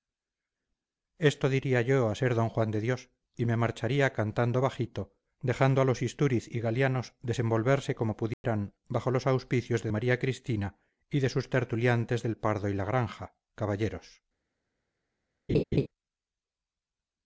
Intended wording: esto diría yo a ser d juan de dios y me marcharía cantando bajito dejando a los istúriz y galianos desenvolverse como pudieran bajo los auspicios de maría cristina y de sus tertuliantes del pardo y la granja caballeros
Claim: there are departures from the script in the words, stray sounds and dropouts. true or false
true